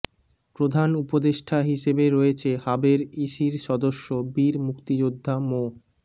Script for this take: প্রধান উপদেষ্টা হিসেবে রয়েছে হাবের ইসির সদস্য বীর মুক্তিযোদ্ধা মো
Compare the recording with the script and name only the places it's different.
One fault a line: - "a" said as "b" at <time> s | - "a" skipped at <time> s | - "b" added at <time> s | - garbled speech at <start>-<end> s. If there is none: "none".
none